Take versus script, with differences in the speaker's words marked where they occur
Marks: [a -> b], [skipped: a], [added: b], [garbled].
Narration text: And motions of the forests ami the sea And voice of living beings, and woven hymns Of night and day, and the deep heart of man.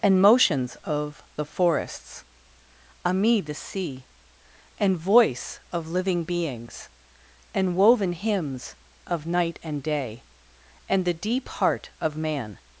And motions of the forests ami the sea And voice of living beings, and woven hymns Of night and day, and the deep heart of man.